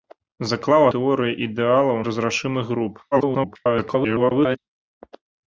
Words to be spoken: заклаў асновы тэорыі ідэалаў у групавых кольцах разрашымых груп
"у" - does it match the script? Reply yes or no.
no